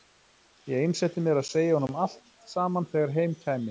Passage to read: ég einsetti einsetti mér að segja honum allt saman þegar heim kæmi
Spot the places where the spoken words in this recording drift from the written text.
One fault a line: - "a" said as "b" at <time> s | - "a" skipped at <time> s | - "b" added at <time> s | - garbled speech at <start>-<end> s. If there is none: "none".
- "einsetti" skipped at 1.2 s